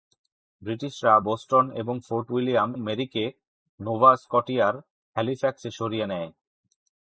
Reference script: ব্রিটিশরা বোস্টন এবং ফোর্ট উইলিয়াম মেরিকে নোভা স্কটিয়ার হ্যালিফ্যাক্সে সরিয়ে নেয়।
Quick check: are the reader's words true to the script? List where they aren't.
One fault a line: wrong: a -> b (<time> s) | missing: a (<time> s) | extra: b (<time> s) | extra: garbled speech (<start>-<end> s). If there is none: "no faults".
no faults